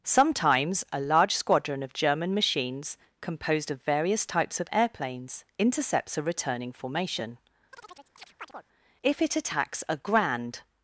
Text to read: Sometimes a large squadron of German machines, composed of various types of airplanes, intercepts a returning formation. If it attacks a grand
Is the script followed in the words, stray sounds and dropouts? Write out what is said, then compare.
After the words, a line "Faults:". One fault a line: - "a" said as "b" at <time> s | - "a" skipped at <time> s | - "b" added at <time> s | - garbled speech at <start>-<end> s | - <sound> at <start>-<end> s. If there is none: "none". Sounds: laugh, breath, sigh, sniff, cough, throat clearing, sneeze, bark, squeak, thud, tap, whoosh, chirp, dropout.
Sometimes a large squadron of German machines, composed of various types of airplanes, intercepts a returning formation. If it attacks a grand
Faults:
- chirp at 7.7-8.7 s